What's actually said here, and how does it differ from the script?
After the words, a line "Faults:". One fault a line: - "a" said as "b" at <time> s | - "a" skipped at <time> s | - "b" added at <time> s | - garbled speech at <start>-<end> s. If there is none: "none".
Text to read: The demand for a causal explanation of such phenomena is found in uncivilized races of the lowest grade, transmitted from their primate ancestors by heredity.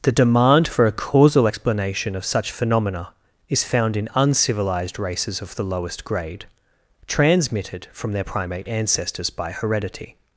The demand for a causal explanation of such phenomena is found in uncivilized races of the lowest grade, transmitted from their primate ancestors by heredity.
Faults:
none